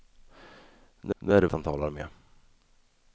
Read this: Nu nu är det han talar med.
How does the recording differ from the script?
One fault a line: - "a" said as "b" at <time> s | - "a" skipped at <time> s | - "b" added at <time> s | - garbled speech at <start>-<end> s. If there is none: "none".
none